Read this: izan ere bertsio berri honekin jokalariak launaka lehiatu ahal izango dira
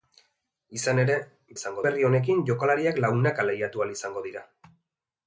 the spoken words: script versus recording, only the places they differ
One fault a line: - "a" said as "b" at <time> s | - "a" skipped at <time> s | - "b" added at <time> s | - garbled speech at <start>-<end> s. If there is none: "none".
- "bertsio" said as "izango" at 1.6 s